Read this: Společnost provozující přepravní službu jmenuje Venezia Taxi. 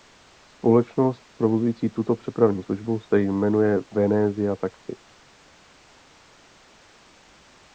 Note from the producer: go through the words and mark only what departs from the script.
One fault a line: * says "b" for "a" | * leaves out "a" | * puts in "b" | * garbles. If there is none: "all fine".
* puts in "tuto"
* puts in "se"